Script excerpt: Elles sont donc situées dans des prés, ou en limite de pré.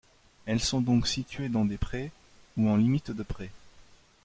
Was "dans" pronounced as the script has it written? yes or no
yes